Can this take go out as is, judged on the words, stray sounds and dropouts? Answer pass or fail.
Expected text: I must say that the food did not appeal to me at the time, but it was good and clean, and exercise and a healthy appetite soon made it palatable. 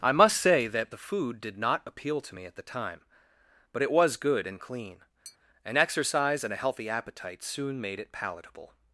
fail